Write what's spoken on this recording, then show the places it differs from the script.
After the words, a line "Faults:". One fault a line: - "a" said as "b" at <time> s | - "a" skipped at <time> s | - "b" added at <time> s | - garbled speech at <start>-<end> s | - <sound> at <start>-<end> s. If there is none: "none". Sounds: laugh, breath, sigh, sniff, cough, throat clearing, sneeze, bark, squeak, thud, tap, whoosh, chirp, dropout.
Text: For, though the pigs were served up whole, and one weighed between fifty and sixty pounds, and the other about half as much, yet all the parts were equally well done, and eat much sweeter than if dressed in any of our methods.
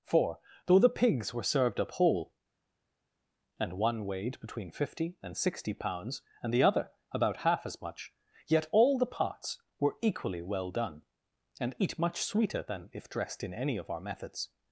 For, though the pigs were served up whole, and one weighed between fifty and sixty pounds, and the other about half as much, yet all the parts were equally well done, and eat much sweeter than if dressed in any of our methods.
Faults:
none